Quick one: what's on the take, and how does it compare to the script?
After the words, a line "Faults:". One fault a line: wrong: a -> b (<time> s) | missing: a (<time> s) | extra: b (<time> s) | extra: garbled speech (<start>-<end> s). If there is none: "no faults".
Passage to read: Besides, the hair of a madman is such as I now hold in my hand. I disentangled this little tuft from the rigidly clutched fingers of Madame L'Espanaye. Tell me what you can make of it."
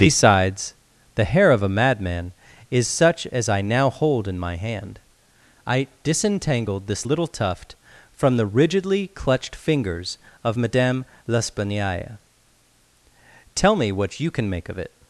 Besides, the hair of a madman is such as I now hold in my hand. I disentangled this little tuft from the rigidly clutched fingers of Madame L'Espanaye. Tell me what you can make of it."
Faults:
no faults